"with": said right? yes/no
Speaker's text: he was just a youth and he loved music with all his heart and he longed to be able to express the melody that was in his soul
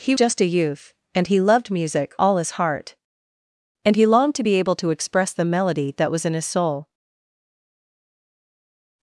no